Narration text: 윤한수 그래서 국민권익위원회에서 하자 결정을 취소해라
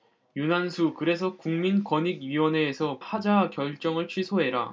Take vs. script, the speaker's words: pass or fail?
pass